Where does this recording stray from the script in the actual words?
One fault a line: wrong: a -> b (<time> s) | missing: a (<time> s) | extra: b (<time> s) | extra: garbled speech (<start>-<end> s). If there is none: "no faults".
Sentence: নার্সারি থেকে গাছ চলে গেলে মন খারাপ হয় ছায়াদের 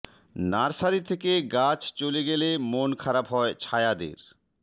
no faults